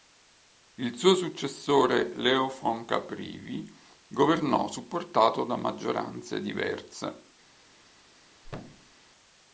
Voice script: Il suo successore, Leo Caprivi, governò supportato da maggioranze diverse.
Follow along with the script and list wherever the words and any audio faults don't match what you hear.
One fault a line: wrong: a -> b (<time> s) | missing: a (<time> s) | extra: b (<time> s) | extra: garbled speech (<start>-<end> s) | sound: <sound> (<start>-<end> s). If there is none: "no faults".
extra: von (2.5 s)
sound: thud (8.4-8.9 s)